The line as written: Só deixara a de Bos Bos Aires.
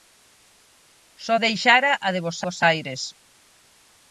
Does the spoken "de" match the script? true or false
true